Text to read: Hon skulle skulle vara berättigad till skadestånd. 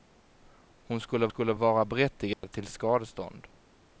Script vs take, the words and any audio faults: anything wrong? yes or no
yes